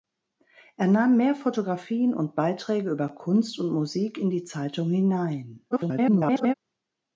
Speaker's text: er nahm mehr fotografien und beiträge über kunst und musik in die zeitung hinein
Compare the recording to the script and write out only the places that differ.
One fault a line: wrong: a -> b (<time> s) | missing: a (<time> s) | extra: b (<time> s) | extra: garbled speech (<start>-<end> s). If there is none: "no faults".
extra: garbled speech (5.7-6.5 s)